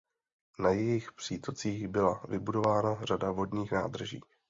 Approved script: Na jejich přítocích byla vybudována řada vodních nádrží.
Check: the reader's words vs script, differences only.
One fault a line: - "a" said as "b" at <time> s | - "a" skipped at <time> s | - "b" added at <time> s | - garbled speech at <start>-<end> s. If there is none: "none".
none